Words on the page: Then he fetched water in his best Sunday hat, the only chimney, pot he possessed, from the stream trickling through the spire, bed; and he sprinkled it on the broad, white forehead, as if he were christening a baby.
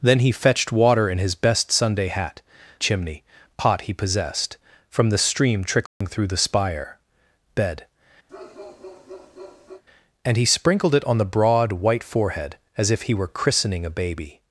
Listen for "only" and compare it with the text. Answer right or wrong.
wrong